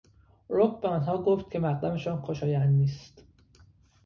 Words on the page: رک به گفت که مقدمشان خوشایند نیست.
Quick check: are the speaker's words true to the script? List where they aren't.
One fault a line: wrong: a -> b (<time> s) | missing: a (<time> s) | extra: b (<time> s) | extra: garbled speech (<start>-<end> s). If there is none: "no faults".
extra: آنها (0.9 s)